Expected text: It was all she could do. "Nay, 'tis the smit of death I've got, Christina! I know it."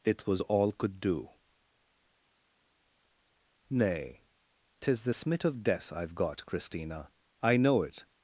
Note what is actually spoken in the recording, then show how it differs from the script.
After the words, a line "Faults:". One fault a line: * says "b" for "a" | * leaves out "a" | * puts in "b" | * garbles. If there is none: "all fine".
It was all could do. "Nay, 'tis the smit of death I've got, Christina! I know it."
Faults:
* leaves out "she"